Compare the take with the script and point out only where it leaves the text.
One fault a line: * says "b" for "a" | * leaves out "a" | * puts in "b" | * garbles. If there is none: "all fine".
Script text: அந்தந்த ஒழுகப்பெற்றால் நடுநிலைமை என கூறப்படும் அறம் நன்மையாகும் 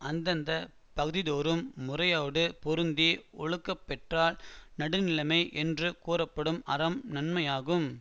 * puts in "பகுதிதோறும் முறையோடு பொருந்தி"
* says "என்று" for "என"